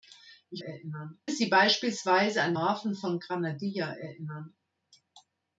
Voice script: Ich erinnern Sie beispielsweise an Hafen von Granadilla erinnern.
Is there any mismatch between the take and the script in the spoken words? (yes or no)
no